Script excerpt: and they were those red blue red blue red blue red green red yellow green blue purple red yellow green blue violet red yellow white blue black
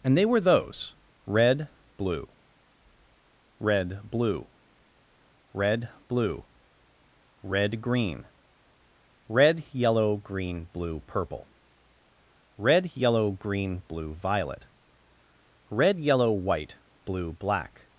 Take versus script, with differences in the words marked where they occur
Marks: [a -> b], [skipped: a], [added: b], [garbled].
and they were those red blue red blue red blue red green red yellow green blue purple red yellow green blue violet red yellow white blue black